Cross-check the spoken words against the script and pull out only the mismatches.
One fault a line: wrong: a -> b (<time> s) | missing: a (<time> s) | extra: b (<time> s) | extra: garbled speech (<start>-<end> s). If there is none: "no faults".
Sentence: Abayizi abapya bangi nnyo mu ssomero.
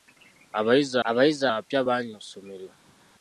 extra: abayizi (1.1 s)
missing: nnyo (2.1 s)